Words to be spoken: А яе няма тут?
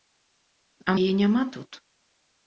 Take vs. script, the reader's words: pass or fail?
pass